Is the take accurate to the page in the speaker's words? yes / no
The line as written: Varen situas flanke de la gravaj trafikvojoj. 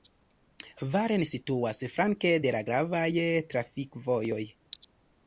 yes